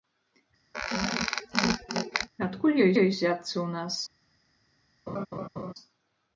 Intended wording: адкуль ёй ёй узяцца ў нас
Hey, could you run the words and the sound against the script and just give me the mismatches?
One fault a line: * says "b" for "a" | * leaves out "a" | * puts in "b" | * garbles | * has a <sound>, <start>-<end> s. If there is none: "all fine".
* has a squeak, 0.7-2.3 s
* has a laugh, 5.1-5.7 s